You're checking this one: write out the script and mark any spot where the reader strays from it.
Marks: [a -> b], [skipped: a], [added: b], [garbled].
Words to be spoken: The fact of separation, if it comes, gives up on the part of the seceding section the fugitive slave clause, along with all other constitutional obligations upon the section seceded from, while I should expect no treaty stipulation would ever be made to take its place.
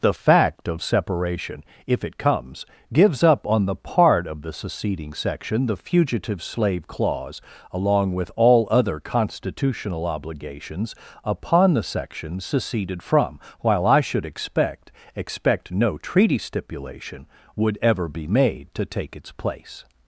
The fact of separation, if it comes, gives up on the part of the seceding section the fugitive slave clause, along with all other constitutional obligations upon the section seceded from, while I should expect [added: expect] no treaty stipulation would ever be made to take its place.